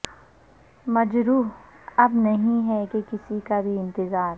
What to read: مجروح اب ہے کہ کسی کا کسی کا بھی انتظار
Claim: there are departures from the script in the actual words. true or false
true